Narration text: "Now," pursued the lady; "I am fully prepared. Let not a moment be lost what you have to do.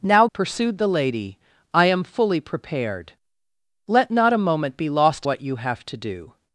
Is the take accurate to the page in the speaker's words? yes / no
yes